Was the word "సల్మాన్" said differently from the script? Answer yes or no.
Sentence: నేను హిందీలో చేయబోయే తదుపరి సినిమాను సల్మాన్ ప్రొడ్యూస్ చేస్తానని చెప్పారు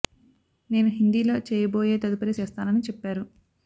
yes